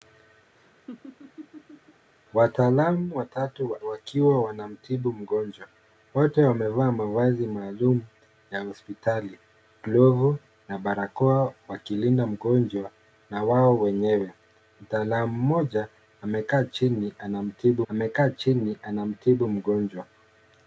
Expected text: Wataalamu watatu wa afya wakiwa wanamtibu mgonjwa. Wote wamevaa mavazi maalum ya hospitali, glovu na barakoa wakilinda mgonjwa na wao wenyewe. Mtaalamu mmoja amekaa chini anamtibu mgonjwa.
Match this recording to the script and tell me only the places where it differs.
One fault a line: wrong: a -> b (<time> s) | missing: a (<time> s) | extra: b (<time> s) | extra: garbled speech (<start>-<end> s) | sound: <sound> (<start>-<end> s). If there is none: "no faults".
sound: laugh (0.5-2.1 s)
missing: afya (3.8 s)
extra: amekaa chini anamtibu (17.9 s)